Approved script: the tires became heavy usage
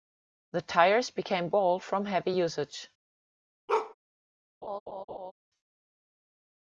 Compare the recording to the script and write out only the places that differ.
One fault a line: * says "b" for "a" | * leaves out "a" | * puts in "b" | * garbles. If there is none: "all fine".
* puts in "bald from"